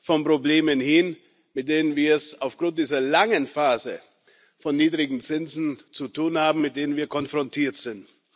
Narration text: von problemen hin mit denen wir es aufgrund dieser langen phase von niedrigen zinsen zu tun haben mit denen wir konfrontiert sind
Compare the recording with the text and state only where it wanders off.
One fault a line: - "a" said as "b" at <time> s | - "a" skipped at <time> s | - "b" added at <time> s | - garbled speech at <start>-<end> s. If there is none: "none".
none